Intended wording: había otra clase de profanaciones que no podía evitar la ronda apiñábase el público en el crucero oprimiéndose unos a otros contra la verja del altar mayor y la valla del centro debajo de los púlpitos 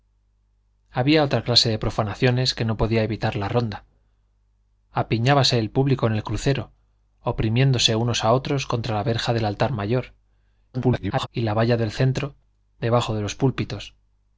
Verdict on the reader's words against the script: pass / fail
fail